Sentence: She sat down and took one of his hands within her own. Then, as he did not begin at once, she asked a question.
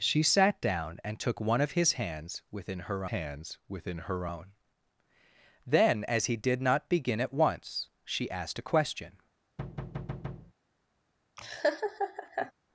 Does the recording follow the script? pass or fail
fail